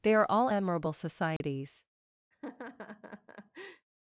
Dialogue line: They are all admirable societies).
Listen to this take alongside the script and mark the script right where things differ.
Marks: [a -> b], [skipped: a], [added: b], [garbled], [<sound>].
They are all admirable societies). [dropout] [laugh]